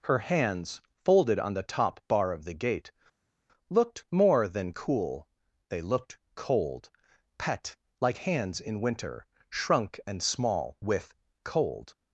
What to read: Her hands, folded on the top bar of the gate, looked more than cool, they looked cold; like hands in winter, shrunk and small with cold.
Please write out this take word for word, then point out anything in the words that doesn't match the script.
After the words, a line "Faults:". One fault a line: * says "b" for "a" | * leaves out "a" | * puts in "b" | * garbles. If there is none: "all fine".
Her hands, folded on the top bar of the gate, looked more than cool, they looked cold; pet like hands in winter, shrunk and small with cold.
Faults:
* puts in "pet"